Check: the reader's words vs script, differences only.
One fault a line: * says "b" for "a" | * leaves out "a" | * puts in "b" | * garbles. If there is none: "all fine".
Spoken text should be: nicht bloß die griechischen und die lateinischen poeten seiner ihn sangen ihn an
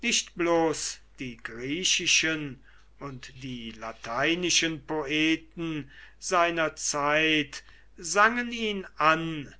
* says "zeit" for "ihn"